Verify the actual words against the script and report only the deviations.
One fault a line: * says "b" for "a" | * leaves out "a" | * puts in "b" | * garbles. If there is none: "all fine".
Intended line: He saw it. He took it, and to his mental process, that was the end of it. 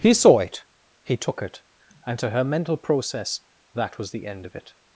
* says "her" for "his"